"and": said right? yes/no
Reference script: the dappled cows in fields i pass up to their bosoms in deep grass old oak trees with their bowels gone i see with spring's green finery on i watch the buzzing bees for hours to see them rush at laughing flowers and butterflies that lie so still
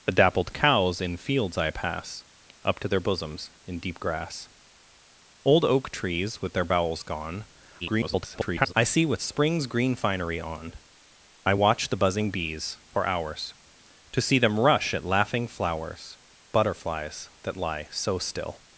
no